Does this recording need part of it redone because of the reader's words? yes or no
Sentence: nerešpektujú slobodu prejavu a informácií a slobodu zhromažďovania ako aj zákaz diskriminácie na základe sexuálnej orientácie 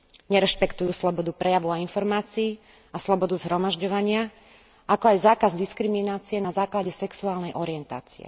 no